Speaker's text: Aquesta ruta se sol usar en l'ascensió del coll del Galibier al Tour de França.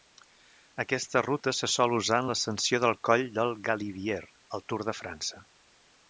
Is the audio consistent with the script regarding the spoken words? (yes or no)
yes